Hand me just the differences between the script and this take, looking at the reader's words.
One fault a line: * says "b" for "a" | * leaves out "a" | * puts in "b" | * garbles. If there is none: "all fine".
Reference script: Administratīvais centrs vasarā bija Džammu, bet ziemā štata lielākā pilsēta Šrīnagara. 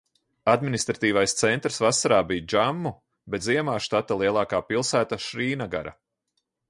all fine